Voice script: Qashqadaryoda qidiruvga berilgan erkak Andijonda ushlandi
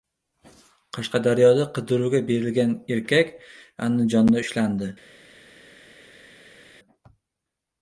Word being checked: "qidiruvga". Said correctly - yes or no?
yes